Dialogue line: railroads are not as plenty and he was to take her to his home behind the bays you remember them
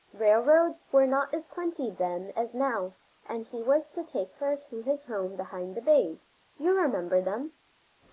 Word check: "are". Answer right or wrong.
wrong